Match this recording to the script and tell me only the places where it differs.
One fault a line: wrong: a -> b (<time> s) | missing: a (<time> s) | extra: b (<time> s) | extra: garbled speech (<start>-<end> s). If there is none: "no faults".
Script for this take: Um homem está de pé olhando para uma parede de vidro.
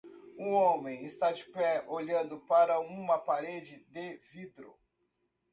no faults